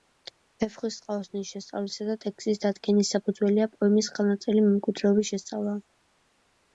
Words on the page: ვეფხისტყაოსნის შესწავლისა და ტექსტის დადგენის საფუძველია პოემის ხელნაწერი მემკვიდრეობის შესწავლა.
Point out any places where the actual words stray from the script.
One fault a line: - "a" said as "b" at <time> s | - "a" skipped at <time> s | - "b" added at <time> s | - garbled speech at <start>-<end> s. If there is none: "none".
none